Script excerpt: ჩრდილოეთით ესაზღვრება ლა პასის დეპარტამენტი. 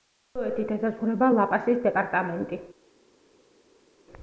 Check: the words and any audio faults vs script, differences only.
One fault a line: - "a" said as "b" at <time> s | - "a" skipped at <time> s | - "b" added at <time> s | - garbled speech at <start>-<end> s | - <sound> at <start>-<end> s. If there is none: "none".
none